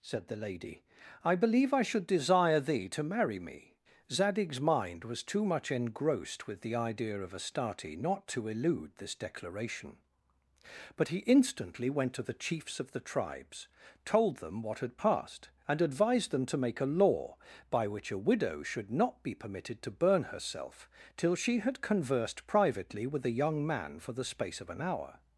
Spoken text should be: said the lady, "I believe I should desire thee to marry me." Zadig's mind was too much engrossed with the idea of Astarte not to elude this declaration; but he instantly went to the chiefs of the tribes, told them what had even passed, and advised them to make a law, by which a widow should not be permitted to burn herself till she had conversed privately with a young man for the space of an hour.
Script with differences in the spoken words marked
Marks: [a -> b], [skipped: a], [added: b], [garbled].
said the lady, "I believe I should desire thee to marry me." Zadig's mind was too much engrossed with the idea of Astarte not to elude this declaration; but he instantly went to the chiefs of the tribes, told them what had [skipped: even] passed, and advised them to make a law, by which a widow should not be permitted to burn herself till she had conversed privately with a young man for the space of an hour.